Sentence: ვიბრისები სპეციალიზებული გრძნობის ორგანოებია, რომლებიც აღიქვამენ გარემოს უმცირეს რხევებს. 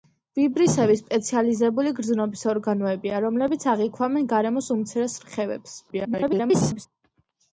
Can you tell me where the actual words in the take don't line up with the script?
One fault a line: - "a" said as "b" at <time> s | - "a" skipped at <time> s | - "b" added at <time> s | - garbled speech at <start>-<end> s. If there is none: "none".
- garbled speech at 5.9-6.9 s